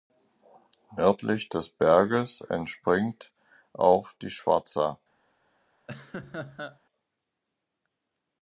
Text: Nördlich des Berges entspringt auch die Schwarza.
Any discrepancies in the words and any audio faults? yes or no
yes